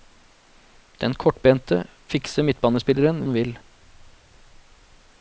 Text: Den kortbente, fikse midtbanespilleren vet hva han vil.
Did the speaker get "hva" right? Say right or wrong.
wrong